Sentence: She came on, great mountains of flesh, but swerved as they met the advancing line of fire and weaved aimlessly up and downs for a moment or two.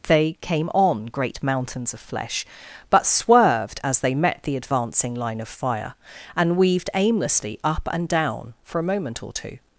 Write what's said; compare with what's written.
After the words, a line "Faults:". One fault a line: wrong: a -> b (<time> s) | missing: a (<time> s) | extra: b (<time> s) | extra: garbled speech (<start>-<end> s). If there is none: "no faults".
They came on, great mountains of flesh, but swerved as they met the advancing line of fire and weaved aimlessly up and down for a moment or two.
Faults:
wrong: She -> They (0.1 s)
wrong: downs -> down (8.1 s)